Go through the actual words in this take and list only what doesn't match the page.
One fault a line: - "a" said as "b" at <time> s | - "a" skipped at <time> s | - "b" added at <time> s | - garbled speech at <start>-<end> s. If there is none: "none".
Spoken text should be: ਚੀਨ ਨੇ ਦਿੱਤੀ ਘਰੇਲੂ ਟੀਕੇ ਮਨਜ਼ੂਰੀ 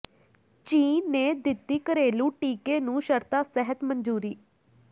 - "ਨੂੰ ਸ਼ਰਤਾਂ ਸਹਿਤ" added at 2.8 s